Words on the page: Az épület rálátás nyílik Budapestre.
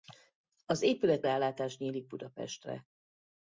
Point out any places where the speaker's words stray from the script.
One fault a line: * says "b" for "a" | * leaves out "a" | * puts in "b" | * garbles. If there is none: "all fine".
all fine